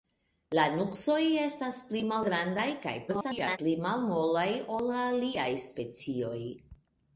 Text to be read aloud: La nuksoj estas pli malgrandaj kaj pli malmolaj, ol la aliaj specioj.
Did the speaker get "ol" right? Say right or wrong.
right